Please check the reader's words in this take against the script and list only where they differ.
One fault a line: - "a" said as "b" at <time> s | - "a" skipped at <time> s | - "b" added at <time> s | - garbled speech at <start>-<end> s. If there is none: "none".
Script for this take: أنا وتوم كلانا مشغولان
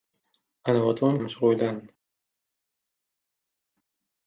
- "كلانا" skipped at 1.2 s